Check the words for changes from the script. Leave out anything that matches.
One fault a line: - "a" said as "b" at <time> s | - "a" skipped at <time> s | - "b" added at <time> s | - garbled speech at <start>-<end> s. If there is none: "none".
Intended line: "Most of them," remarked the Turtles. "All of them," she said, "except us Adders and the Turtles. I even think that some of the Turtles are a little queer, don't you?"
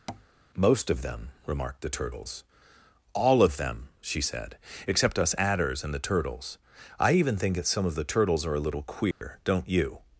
none